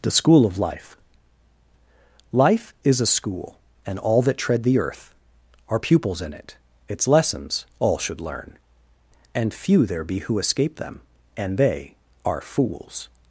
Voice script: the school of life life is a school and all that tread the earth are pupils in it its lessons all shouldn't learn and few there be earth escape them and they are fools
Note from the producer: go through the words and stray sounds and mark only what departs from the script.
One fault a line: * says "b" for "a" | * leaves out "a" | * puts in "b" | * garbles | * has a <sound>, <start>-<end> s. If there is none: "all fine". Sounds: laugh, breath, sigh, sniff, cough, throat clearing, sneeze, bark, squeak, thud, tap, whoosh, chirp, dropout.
* says "should" for "shouldn't"
* says "who" for "earth"